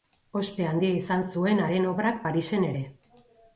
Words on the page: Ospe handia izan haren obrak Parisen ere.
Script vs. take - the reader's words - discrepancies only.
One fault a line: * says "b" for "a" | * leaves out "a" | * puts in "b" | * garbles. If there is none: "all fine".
* puts in "zuen"